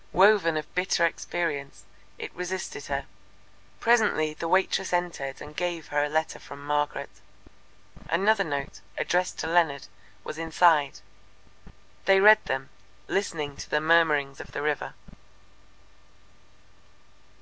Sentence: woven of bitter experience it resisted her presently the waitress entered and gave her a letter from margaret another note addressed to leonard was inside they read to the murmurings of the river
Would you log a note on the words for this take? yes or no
yes